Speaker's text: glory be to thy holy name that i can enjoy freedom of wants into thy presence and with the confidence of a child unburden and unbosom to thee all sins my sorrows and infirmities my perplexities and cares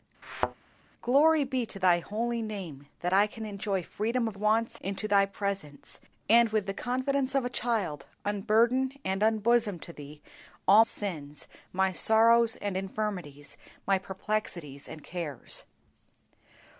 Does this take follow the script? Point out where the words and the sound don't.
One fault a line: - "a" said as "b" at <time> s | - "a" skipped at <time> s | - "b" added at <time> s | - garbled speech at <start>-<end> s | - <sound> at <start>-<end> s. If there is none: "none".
- thud at 0.2-0.5 s